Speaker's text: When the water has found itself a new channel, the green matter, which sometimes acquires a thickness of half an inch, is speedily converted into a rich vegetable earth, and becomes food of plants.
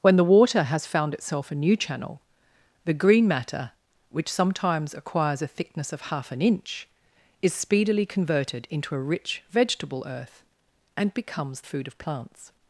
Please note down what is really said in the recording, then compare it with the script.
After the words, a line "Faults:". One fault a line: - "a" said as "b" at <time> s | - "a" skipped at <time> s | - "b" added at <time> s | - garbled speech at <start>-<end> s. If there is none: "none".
When the water has found itself a new channel, the green matter, which sometimes acquires a thickness of half an inch, is speedily converted into a rich vegetable earth, and becomes food of plants.
Faults:
none